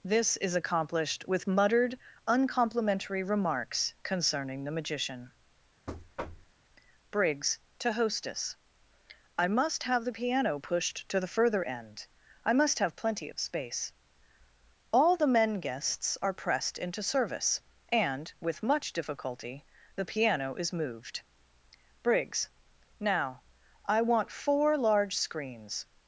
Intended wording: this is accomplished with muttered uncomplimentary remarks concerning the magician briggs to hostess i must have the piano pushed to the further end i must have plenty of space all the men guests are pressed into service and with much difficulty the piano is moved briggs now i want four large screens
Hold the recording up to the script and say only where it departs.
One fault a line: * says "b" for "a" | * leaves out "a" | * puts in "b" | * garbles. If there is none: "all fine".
all fine